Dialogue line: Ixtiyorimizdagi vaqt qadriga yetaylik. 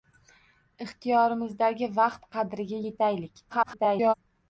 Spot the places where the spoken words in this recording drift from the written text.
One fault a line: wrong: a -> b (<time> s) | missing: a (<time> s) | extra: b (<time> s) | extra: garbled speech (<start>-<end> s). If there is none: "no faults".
extra: garbled speech (3.5-4.1 s)